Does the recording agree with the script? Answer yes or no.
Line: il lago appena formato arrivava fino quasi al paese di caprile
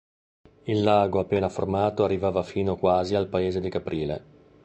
yes